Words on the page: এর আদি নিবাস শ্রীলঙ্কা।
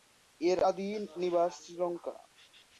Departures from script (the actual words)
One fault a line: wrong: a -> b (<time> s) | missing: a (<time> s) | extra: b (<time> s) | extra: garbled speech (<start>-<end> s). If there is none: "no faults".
no faults